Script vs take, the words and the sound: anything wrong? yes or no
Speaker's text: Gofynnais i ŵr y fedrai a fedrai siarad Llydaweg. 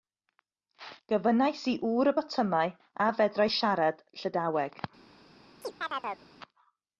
yes